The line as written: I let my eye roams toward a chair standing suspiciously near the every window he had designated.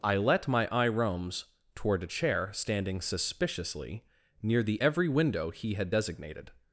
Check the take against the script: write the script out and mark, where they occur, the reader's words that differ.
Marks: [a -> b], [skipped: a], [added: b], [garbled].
I let my eye roams toward a chair standing suspiciously near the every window he had designated.